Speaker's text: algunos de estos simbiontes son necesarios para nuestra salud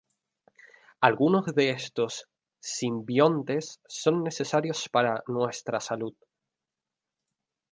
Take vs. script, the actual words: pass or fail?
pass